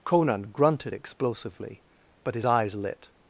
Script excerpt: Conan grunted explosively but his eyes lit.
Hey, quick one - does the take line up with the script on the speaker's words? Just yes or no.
yes